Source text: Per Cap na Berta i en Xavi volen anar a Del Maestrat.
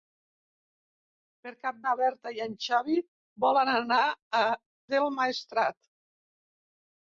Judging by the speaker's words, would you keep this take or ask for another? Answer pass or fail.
pass